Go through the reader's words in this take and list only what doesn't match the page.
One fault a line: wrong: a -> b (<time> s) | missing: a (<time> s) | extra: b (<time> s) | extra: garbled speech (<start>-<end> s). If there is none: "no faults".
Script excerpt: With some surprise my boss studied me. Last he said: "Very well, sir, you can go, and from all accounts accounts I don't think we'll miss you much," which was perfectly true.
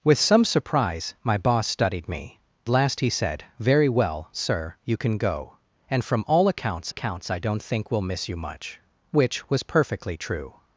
no faults